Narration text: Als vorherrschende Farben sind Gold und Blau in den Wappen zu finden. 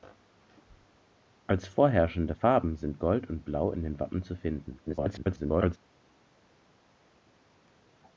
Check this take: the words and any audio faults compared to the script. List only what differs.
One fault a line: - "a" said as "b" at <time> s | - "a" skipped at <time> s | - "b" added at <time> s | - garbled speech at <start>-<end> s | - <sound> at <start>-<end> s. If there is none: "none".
- garbled speech at 4.9-5.8 s